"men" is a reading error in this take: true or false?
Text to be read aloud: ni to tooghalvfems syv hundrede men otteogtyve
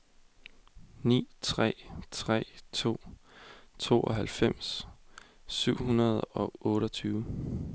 true